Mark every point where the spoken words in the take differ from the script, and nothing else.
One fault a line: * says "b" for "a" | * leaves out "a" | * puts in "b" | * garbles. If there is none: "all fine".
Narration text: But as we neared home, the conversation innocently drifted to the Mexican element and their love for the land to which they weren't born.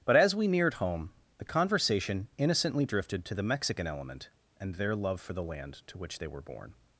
* says "were" for "weren't"